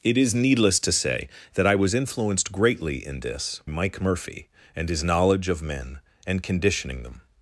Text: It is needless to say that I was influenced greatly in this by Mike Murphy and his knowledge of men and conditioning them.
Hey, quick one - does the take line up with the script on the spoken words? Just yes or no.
no